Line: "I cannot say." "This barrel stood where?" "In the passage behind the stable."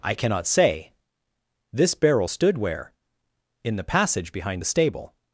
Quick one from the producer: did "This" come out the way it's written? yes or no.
yes